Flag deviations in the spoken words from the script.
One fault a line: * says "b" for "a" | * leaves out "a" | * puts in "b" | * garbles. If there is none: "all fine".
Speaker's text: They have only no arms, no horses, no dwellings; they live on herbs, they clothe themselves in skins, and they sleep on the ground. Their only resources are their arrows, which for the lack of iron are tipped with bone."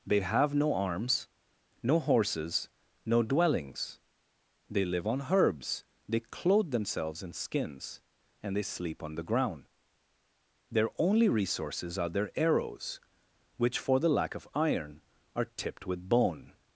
* leaves out "only"